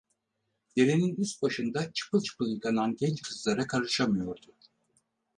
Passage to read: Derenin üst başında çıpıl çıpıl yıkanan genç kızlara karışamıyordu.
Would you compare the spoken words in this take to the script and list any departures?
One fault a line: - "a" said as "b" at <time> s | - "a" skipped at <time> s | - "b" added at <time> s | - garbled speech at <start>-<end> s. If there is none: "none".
none